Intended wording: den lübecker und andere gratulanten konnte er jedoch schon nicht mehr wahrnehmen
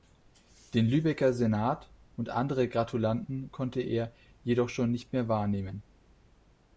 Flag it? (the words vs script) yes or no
yes